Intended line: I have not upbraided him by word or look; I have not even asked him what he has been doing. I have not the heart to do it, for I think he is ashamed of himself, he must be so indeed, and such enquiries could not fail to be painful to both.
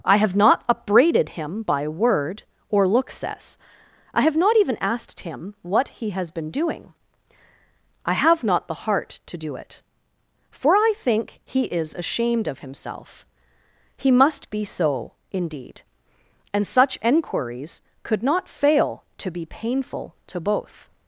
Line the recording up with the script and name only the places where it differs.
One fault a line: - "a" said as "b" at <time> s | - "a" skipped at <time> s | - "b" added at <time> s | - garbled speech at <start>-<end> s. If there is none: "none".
- "says" added at 3.1 s